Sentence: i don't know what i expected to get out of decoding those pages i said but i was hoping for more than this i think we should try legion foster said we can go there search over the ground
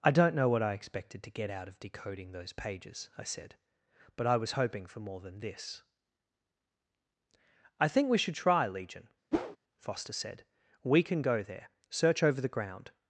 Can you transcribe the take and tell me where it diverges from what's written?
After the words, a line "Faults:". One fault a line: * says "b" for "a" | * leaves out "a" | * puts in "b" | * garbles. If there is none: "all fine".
i don't know what i expected to get out of decoding those pages i said but i was hoping for more than this i think we should try legion foster said we can go there search over the ground
Faults:
all fine